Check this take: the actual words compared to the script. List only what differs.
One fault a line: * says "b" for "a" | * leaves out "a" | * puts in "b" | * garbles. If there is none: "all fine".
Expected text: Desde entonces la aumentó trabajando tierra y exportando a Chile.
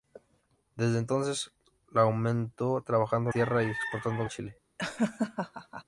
all fine